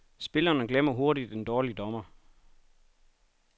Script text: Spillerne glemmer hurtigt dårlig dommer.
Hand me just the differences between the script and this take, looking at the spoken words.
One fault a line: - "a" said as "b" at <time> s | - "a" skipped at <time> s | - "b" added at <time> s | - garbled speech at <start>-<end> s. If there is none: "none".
- "en" added at 1.3 s